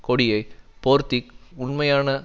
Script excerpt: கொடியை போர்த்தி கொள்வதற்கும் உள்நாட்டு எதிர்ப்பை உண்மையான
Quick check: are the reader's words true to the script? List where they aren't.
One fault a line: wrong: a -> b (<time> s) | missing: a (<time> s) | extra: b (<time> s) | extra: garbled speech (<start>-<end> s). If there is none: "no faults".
missing: கொள்வதற்கும் உள்நாட்டு எதிர்ப்பை (1.2 s)